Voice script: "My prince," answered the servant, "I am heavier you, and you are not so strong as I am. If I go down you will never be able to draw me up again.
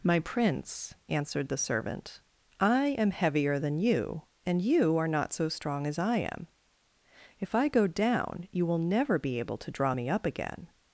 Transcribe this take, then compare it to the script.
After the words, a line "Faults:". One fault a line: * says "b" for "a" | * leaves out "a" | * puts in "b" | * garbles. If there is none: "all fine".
"My prince," answered the servant, "I am heavier than you, and you are not so strong as I am. If I go down you will never be able to draw me up again.
Faults:
* puts in "than"